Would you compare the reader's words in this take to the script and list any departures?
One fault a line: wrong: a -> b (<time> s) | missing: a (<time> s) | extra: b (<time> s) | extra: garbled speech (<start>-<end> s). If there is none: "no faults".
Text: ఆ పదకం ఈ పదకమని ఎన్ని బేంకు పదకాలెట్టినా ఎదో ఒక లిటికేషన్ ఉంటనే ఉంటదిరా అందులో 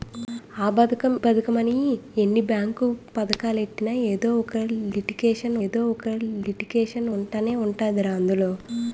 missing: ఈ (1.1 s)
extra: ఎదో ఒక లిటికేషన్ (5.6 s)